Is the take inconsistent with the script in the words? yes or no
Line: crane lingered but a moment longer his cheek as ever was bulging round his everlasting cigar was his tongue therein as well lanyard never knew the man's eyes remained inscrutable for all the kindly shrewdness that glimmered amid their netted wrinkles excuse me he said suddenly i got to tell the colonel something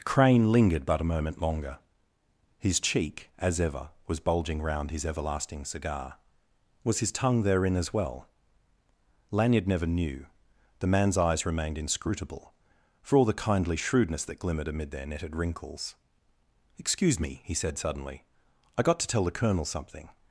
no